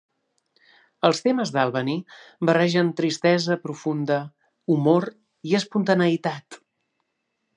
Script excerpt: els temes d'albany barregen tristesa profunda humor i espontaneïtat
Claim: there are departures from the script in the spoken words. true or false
false